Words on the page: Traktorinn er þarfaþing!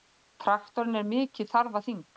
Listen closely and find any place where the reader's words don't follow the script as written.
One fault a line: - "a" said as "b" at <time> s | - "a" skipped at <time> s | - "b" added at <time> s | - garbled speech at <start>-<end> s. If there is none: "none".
- "mikið" added at 1.1 s